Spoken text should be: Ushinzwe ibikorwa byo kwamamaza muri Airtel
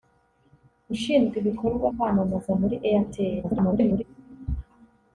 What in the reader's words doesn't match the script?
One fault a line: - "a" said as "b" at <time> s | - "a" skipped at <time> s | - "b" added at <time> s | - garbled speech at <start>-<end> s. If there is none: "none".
- "byo" skipped at 1.9 s
- garbled speech at 3.4-4.0 s